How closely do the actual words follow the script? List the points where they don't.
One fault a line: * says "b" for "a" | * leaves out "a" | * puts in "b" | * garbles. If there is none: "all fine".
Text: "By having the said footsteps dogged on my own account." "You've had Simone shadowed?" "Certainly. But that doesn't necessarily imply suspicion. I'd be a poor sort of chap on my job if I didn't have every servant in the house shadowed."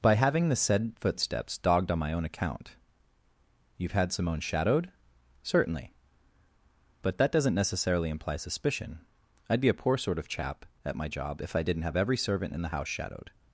* says "at" for "on"